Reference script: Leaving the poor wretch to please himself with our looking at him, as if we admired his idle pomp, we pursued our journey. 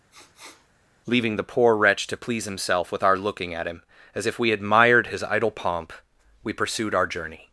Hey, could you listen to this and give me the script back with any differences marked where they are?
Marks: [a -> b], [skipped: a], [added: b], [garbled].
Leaving the poor wretch to please himself with our looking at him, as if we admired his idle pomp, we pursued our journey.